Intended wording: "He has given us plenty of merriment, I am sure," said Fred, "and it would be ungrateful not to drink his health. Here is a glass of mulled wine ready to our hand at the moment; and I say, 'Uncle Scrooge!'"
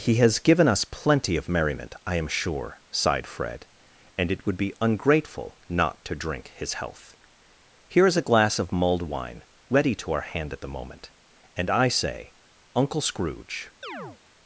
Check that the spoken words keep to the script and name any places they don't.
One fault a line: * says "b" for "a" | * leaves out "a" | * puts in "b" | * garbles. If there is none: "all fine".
* says "sighed" for "said"